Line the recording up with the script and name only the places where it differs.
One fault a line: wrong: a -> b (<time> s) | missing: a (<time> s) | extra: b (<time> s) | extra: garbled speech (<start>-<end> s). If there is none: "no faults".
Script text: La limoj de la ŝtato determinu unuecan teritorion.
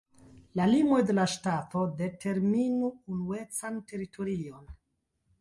no faults